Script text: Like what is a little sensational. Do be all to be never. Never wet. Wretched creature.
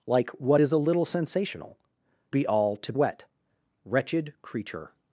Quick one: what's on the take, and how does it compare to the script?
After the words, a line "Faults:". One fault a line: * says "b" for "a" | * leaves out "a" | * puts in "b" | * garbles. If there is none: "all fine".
Like what is a little sensational. Be all to wet. Wretched creature.
Faults:
* leaves out "Do"
* leaves out "be never Never"